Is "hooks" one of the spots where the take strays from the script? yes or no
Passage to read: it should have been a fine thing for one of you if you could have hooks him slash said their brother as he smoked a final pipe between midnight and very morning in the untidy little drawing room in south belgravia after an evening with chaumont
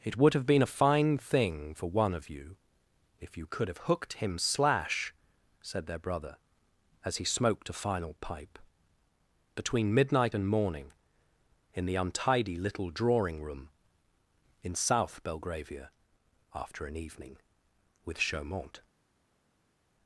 yes